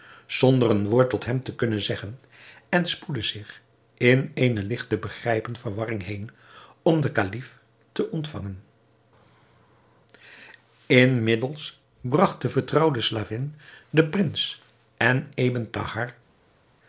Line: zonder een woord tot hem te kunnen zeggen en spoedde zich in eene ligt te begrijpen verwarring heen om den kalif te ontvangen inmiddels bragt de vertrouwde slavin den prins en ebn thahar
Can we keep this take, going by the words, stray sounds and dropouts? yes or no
yes